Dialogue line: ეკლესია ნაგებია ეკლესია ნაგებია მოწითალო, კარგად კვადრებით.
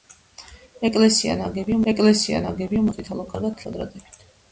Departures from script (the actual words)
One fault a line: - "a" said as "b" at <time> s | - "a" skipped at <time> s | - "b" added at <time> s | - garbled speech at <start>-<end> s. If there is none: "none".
none